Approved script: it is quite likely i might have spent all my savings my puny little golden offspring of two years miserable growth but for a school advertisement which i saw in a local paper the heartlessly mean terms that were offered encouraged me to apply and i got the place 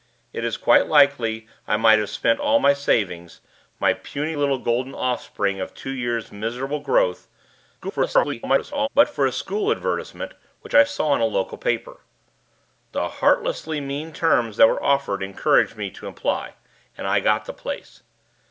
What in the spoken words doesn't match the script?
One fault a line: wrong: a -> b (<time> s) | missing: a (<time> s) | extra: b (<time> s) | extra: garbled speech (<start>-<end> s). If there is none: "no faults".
extra: garbled speech (7.8-8.9 s)